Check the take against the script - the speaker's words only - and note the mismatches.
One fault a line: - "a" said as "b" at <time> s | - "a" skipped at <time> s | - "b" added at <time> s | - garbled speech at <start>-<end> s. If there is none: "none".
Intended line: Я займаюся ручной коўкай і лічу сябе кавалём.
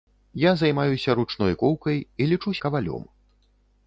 - "сябе" skipped at 2.5 s